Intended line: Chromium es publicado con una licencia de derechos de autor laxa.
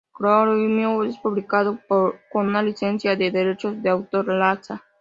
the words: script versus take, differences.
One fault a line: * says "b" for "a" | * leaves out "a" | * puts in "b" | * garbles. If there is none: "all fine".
all fine